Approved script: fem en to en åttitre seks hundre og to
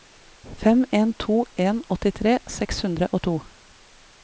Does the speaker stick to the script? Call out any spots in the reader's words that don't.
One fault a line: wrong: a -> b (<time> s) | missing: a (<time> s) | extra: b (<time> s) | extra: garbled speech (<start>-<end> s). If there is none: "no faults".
no faults